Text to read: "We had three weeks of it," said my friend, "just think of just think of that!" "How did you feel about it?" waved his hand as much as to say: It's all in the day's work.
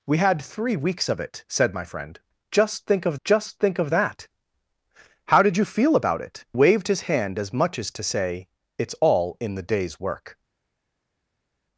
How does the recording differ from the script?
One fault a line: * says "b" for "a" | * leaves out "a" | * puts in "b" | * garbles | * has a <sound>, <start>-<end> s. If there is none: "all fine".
all fine